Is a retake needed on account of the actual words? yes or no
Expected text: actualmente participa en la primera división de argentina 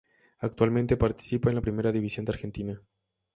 no